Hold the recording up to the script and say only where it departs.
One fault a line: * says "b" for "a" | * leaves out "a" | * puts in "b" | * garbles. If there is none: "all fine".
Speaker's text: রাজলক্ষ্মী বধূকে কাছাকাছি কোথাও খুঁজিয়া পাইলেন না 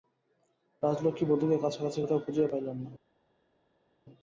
all fine